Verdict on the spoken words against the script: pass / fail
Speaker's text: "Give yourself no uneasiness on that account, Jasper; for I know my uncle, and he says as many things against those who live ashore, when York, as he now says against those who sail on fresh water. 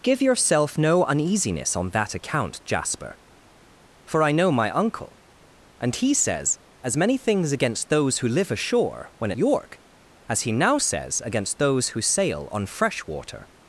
pass